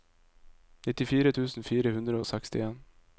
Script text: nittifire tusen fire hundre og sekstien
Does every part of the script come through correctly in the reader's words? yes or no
yes